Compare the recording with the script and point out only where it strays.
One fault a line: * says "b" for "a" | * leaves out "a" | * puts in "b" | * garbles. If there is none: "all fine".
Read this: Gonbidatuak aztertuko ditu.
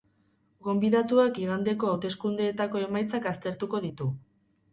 * puts in "igandeko hauteskundeetako emaitzak"